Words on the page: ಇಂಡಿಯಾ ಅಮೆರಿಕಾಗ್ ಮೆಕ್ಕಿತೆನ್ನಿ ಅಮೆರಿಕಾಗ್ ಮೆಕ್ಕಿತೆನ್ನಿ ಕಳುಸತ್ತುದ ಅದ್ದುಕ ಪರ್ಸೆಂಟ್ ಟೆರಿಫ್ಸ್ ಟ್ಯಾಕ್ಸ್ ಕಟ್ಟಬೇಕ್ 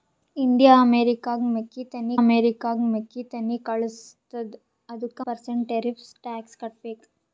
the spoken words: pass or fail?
pass